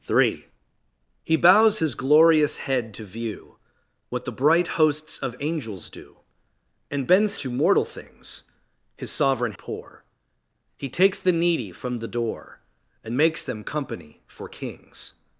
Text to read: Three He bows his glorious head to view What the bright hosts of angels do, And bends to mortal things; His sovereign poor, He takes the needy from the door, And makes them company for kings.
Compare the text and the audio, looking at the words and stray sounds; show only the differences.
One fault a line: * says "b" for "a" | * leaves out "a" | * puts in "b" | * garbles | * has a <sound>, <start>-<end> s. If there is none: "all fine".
all fine